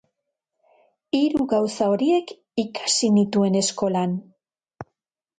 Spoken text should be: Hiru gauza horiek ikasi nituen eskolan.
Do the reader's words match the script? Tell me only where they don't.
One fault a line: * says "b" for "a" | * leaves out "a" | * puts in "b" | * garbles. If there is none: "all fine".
all fine